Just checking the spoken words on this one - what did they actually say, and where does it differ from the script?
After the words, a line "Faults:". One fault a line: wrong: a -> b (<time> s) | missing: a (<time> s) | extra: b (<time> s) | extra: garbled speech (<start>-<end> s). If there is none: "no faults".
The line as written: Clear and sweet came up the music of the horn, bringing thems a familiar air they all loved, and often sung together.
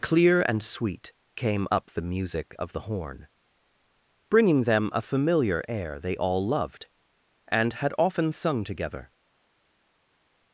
Clear and sweet came up the music of the horn, bringing them a familiar air they all loved, and had often sung together.
Faults:
wrong: thems -> them (4.6 s)
extra: had (7.7 s)